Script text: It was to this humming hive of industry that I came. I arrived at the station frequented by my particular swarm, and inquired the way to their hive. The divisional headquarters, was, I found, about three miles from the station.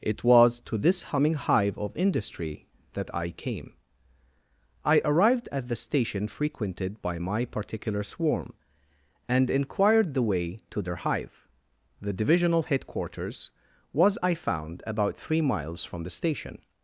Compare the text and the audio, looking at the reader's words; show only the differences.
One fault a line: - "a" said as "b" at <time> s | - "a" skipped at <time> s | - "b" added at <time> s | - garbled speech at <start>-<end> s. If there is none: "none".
none